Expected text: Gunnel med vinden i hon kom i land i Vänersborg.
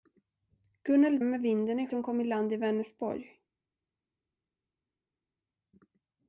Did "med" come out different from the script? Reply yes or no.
no